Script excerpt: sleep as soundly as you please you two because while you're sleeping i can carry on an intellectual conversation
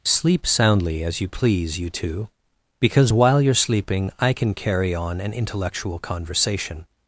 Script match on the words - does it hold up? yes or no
no